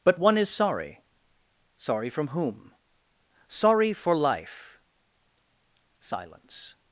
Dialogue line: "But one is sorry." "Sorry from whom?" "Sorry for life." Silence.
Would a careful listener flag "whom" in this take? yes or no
no